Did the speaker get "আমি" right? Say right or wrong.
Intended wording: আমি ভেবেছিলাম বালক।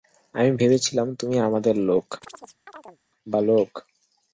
right